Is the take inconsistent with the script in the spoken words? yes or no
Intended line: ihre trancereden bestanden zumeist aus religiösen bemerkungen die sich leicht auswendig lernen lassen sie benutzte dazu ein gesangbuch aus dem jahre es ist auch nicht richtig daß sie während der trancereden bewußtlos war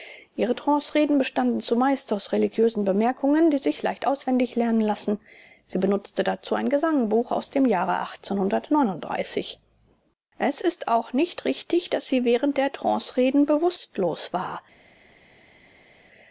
no